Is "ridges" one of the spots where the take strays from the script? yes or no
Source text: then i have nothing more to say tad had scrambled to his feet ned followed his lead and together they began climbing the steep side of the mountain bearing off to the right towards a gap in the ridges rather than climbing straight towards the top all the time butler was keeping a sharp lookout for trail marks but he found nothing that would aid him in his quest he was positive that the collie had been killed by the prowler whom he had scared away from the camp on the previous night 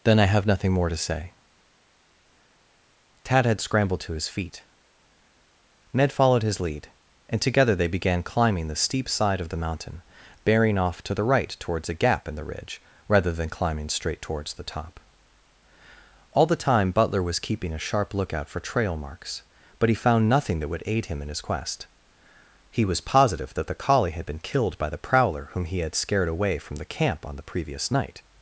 yes